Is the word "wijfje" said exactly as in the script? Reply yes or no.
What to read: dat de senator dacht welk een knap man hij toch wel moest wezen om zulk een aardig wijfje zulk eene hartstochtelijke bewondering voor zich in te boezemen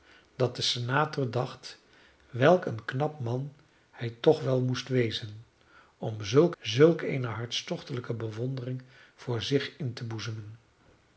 no